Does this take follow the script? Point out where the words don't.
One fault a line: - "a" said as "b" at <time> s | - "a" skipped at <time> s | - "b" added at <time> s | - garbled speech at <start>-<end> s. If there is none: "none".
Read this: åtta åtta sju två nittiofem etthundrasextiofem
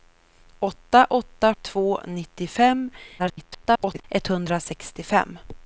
- "sju" skipped at 1.5 s
- garbled speech at 3.2-4.0 s